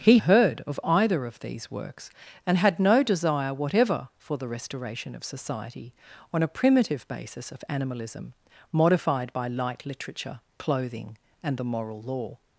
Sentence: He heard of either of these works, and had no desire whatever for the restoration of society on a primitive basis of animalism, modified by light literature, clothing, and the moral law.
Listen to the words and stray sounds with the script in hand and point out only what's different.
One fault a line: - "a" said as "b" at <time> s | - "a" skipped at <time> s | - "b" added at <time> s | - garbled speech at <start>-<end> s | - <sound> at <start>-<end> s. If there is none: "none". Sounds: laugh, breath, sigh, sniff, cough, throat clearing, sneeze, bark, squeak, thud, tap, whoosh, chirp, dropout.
none